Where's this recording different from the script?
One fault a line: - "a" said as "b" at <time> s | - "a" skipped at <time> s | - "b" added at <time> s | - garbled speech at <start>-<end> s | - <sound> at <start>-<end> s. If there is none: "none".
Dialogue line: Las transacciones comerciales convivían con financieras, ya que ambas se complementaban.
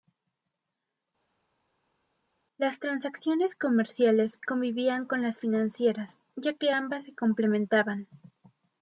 - "las" added at 5.2 s